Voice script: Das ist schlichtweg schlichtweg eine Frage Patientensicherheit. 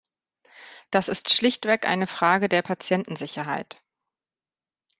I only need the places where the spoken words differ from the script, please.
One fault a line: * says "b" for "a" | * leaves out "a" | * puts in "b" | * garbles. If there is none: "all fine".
* leaves out "schlichtweg"
* puts in "der"